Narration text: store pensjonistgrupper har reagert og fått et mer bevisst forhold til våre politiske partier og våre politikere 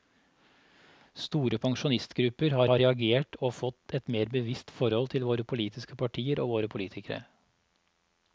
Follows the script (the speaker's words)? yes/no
no